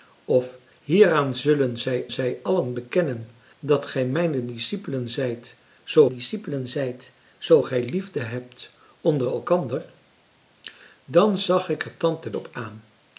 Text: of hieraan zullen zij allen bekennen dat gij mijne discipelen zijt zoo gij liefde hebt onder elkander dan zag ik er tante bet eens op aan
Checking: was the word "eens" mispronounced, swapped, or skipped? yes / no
yes